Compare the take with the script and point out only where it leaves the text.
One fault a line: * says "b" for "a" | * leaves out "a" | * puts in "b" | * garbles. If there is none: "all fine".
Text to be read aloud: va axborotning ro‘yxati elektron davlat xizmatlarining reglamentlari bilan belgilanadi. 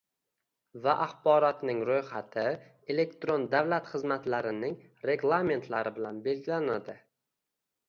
all fine